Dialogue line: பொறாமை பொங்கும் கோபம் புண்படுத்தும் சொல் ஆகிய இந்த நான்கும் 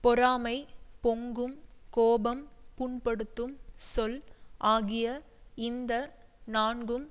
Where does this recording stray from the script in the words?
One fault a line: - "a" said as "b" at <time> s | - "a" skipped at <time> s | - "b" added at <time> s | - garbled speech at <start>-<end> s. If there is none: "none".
none